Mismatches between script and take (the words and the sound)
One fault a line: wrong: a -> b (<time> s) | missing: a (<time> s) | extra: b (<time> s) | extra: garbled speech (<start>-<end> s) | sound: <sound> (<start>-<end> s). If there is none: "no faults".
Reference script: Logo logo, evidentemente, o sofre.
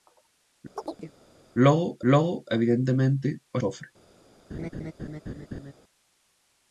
sound: chirp (0.8-1.1 s)
sound: laugh (4.5-5.7 s)